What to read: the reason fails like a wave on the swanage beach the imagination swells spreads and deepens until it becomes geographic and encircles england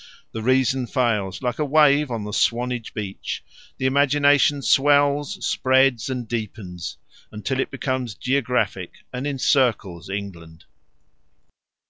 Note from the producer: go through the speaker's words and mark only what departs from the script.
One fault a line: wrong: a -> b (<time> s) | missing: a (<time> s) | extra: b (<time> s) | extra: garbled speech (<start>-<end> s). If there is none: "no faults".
no faults